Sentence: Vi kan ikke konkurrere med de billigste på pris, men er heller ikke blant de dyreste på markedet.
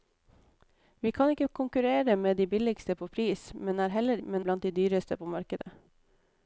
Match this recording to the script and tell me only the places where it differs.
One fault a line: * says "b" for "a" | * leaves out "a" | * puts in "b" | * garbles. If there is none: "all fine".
* says "men" for "ikke"